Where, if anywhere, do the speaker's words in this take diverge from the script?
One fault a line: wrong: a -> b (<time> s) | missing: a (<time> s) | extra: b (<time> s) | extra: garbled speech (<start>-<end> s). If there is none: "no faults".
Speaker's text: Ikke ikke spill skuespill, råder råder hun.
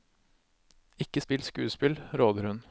missing: ikke (1.2 s)
missing: råder (2.5 s)